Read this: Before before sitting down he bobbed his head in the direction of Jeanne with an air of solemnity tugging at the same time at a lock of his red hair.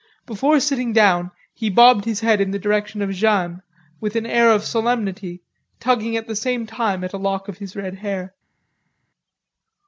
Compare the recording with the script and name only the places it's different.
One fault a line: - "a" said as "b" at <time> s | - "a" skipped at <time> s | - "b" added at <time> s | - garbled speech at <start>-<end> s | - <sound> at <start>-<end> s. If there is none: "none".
- "before" skipped at 0.6 s